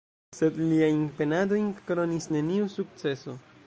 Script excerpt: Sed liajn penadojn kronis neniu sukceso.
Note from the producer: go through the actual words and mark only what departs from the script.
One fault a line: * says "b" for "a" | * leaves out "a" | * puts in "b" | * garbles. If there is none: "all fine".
all fine